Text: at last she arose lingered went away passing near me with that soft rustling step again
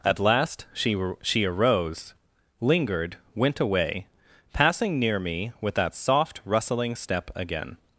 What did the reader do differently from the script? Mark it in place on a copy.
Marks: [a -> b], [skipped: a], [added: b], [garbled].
at last she [added: she] arose lingered went away passing near me with that soft rustling step again